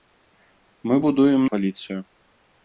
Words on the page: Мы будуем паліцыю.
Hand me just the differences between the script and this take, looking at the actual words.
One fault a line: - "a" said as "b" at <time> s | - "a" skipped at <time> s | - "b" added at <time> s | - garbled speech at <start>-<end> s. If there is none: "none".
none